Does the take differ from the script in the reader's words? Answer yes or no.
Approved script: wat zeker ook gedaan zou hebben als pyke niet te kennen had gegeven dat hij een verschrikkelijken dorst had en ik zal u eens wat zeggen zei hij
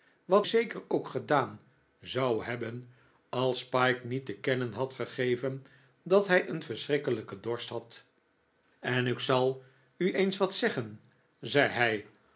no